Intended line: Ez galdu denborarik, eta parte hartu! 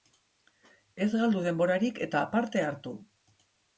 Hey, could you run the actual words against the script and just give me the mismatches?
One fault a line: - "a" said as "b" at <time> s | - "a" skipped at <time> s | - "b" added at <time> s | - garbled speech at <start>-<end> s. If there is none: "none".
none